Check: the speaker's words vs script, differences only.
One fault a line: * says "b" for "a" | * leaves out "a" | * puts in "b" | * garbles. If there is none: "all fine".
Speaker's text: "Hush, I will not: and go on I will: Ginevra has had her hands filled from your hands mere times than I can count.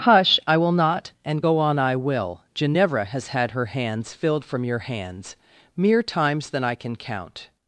all fine